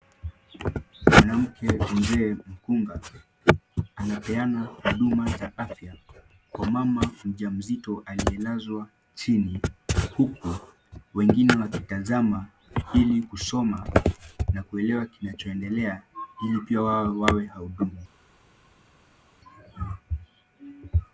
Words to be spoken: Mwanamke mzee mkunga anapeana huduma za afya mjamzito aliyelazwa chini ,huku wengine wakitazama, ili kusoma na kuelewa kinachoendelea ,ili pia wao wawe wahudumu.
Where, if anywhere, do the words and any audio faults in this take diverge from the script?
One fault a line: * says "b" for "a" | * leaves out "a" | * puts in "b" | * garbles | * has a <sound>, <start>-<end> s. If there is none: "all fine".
* puts in "kwa mama"